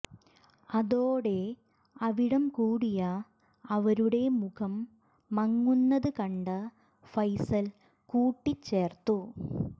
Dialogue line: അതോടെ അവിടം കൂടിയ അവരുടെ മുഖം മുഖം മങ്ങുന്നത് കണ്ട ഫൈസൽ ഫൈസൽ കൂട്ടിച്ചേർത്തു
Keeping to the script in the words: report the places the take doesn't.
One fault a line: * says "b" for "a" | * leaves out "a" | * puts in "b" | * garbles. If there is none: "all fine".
* leaves out "മുഖം"
* leaves out "ഫൈസൽ"